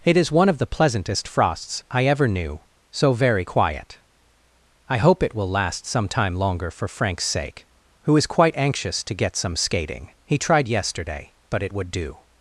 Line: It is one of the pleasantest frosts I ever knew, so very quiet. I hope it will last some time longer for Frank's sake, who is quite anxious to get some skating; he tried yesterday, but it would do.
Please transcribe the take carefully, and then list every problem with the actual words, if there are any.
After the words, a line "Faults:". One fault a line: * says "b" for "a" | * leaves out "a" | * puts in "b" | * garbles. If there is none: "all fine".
It is one of the pleasantest frosts I ever knew, so very quiet. I hope it will last some time longer for Frank's sake, who is quite anxious to get some skating; he tried yesterday, but it would do.
Faults:
all fine